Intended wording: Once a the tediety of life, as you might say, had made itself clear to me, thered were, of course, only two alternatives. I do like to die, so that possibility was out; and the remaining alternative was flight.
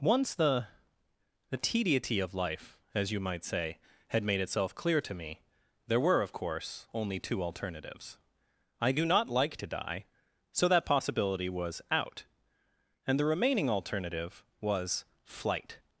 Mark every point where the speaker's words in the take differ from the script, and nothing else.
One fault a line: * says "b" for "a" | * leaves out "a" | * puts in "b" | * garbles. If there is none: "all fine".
* says "the" for "a"
* says "there" for "thered"
* puts in "not"